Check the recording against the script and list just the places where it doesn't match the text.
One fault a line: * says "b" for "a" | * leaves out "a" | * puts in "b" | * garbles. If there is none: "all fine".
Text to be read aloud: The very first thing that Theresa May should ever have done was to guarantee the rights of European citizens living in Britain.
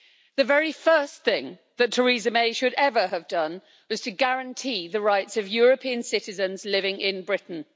all fine